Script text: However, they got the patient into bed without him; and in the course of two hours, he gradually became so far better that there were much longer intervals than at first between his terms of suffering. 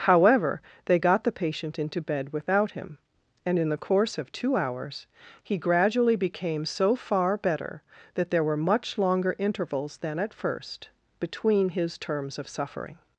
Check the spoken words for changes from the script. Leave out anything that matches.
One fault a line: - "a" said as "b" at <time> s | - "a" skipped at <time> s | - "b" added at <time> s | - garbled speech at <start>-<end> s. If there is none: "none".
none